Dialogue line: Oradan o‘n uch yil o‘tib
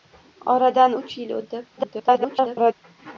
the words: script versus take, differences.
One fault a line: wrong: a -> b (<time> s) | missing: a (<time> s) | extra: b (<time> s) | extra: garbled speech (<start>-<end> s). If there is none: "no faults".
missing: o‘n (0.9 s)
extra: garbled speech (1.8-2.7 s)